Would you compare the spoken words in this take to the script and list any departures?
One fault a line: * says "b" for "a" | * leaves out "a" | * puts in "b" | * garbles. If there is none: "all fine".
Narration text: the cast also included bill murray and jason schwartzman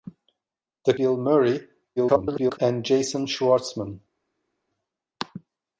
* leaves out "cast also included"
* garbles